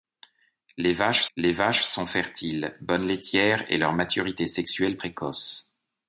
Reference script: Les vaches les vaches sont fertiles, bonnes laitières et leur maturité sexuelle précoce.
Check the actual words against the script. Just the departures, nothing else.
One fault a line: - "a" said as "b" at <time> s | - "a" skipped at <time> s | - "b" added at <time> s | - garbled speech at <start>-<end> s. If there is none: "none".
none